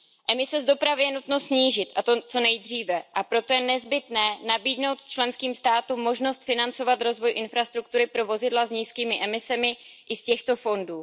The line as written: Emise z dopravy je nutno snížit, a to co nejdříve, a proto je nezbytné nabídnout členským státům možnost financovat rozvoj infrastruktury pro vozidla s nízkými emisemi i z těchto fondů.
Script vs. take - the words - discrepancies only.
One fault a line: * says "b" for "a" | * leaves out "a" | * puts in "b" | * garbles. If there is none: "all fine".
all fine